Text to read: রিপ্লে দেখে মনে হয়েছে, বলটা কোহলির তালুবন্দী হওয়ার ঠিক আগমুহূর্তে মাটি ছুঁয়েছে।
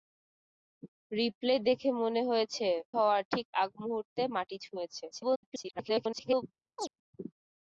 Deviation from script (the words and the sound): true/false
true